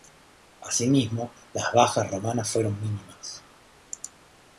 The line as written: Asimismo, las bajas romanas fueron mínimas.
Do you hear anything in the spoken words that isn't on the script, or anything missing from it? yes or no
no